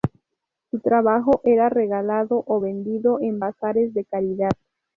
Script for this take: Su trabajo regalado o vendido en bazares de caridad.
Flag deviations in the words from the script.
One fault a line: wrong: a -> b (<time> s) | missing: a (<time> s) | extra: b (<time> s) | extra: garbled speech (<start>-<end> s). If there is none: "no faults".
extra: era (1.4 s)